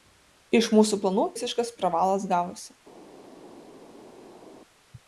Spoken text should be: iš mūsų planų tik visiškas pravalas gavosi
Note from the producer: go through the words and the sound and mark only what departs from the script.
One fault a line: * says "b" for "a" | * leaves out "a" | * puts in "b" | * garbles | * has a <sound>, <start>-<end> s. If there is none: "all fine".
* leaves out "tik"